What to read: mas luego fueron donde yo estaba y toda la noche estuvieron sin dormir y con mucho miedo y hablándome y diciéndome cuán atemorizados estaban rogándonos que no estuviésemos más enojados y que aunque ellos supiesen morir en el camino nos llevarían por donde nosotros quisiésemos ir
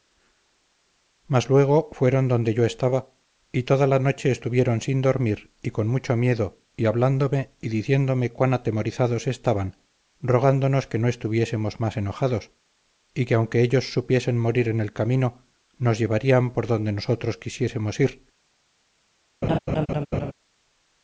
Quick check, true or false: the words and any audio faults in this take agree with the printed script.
false